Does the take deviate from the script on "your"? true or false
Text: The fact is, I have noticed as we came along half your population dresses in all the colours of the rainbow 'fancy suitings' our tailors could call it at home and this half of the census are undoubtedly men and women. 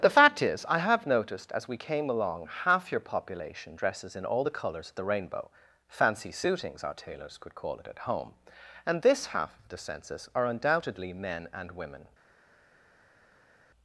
false